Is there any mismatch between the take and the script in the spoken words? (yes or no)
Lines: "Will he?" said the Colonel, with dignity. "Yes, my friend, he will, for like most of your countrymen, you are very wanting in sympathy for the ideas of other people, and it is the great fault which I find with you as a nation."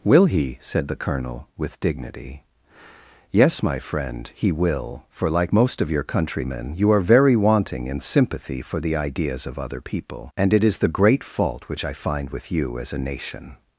no